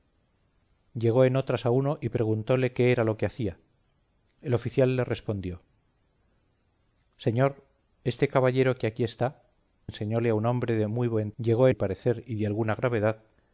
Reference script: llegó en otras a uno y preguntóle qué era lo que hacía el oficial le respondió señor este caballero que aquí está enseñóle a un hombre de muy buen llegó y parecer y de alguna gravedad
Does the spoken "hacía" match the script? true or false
true